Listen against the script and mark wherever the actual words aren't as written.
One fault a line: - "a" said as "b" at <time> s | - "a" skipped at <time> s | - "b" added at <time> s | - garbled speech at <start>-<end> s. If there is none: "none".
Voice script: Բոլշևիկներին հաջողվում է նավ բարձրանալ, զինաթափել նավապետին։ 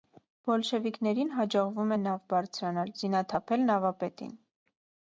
none